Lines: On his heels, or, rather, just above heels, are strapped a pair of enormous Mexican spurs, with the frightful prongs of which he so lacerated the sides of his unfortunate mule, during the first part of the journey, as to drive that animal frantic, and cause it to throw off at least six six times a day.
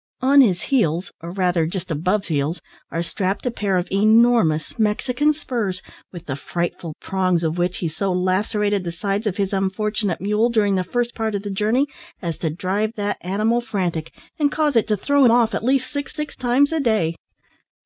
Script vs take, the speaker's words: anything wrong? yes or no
no